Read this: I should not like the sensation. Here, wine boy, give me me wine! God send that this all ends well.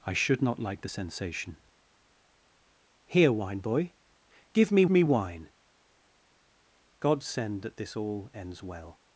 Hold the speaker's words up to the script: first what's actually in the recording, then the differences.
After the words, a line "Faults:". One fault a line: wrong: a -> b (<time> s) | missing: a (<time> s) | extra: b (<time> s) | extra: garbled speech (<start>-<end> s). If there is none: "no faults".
I should not like the sensation. Here, wine boy, give me me wine! God send that this all ends well.
Faults:
no faults